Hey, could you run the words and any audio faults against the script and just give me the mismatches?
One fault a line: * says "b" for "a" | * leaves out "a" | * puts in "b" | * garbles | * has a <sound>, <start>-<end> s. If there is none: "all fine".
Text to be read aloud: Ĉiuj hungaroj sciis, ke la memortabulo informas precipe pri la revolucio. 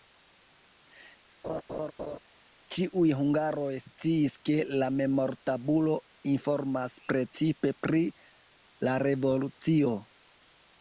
* has a laugh, 1.4-2.2 s